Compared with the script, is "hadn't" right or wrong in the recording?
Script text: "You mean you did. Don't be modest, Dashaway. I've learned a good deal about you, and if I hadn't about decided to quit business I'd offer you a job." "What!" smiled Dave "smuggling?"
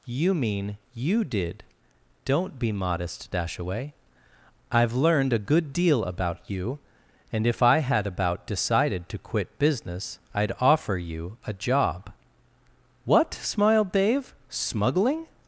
wrong